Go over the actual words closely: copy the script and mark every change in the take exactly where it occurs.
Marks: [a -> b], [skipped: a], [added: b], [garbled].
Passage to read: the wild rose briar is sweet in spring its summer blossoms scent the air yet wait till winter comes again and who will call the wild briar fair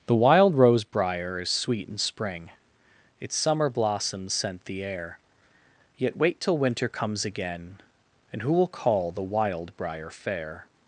the wild rose briar is sweet in spring its summer blossoms scent the air yet wait till winter comes again and who will call the wild briar fair